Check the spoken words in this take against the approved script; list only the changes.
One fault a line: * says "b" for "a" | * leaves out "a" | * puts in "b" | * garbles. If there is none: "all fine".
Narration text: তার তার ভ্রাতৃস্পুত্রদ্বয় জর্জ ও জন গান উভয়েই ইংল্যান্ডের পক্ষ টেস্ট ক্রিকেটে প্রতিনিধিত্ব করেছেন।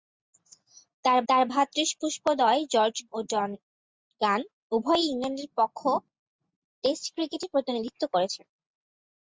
all fine